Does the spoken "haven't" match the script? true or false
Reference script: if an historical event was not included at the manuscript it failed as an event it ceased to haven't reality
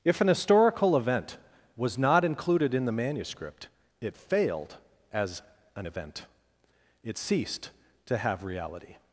false